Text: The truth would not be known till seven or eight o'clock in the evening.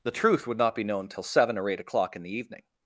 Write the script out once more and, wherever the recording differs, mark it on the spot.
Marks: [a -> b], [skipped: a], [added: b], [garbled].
The truth would not be known till seven or eight o'clock in the evening.